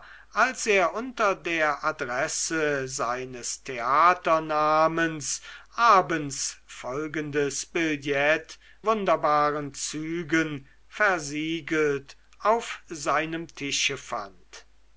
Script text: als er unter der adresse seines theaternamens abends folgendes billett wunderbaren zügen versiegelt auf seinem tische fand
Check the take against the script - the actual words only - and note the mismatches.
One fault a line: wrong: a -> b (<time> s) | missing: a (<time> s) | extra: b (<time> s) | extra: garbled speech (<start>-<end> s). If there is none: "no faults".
no faults